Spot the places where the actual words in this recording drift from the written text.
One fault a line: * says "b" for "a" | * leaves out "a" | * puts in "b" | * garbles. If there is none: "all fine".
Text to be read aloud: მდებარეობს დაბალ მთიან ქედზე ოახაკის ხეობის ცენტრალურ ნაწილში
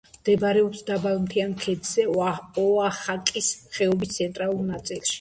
all fine